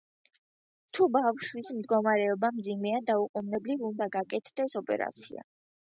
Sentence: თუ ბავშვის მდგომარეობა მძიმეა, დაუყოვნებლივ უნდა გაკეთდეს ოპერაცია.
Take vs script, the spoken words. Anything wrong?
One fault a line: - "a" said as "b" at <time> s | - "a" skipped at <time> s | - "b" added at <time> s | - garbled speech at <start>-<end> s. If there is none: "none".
none